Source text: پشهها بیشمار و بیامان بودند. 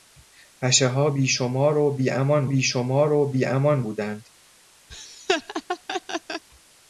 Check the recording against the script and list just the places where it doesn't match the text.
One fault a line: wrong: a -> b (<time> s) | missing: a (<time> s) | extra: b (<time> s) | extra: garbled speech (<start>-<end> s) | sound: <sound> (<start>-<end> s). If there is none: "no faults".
extra: بیشمار و بیامان (2.4 s)
sound: laugh (4.9-6.4 s)